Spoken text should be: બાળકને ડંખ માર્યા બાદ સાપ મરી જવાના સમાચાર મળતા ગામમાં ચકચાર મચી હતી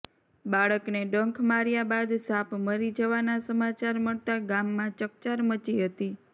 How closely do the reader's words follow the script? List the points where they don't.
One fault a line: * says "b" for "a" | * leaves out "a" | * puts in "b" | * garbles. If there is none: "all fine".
all fine